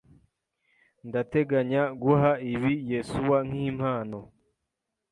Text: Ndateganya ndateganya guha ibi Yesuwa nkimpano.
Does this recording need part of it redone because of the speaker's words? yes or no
yes